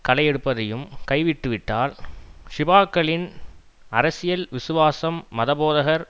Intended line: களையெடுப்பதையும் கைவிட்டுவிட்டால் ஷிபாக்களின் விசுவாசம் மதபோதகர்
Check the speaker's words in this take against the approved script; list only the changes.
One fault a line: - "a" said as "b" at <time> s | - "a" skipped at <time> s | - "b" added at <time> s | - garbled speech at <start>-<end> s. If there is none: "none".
- "அரசியல்" added at 3.9 s